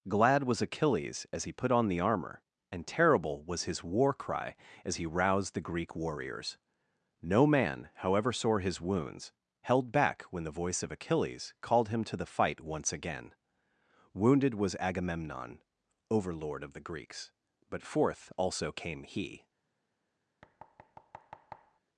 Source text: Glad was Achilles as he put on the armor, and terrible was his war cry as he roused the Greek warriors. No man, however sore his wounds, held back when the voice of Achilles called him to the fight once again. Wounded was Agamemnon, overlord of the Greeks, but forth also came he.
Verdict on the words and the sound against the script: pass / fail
fail